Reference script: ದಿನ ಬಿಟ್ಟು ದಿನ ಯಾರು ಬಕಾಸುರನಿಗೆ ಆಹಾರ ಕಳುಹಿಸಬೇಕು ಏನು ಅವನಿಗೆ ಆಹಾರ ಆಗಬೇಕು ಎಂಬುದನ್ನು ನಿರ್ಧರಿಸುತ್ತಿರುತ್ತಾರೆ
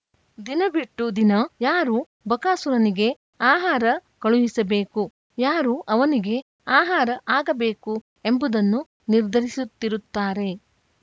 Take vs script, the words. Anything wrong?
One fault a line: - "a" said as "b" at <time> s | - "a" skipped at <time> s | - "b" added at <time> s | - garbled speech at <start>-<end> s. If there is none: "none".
- "ಏನು" said as "ಯಾರು" at 5.4 s